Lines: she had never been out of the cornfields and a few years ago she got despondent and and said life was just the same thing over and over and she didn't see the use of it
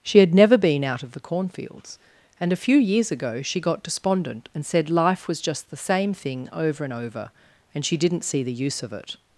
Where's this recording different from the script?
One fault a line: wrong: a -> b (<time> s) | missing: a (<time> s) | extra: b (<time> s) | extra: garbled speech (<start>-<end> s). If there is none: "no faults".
missing: and (4.7 s)